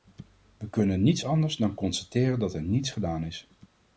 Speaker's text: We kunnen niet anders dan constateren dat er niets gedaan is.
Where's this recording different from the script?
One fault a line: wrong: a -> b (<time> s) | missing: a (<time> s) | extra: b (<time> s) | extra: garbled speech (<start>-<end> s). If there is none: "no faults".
no faults